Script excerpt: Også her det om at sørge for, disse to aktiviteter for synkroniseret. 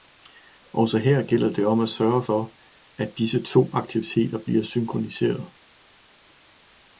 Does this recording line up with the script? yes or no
no